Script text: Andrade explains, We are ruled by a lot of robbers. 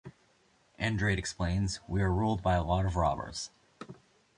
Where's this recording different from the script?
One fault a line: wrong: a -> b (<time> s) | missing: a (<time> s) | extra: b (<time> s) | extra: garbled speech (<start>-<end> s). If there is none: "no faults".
no faults